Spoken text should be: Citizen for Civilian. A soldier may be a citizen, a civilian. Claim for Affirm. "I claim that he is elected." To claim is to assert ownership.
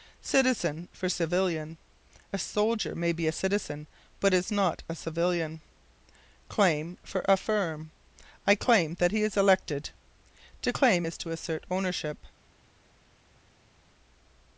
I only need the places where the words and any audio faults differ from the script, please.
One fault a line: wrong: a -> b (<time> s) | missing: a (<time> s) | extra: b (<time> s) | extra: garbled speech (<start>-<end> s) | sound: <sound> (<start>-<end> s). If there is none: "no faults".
extra: but is not (4.2 s)